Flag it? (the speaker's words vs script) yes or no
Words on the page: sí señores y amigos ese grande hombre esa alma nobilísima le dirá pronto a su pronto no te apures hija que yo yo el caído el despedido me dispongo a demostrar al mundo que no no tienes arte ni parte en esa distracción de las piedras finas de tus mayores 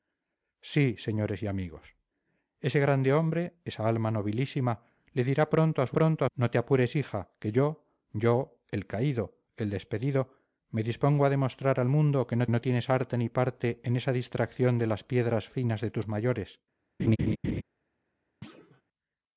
no